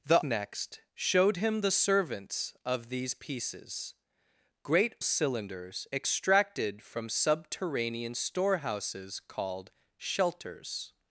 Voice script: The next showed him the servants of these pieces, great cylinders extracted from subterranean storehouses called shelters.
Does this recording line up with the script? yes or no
yes